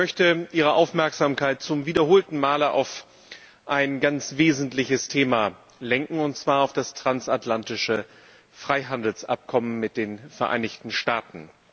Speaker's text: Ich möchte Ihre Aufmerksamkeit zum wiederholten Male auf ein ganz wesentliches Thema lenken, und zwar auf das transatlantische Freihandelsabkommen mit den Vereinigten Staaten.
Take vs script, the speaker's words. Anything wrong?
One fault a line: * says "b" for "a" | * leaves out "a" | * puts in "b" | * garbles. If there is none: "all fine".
all fine